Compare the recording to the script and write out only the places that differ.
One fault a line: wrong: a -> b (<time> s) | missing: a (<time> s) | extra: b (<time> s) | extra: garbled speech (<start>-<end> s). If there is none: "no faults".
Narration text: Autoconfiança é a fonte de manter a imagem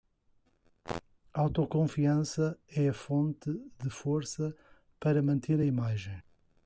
extra: força para (3.9 s)